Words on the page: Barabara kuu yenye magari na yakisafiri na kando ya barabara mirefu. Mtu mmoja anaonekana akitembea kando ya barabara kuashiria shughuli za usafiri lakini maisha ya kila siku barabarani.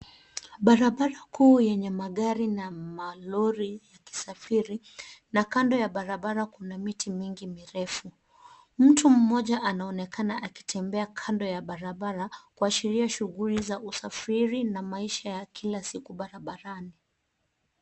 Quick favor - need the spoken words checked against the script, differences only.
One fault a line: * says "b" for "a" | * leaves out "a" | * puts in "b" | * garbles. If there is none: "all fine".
* puts in "malori"
* puts in "kuna miti mingi"
* says "na" for "lakini"